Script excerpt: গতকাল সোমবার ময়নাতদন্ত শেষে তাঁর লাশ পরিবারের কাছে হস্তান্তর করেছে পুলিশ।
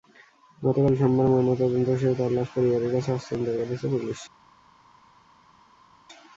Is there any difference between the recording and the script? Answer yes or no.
no